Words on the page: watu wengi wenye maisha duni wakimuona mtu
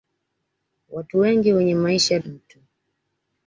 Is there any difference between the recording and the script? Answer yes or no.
yes